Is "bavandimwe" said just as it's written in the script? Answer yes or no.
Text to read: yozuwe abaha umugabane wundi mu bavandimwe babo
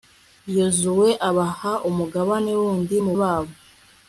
no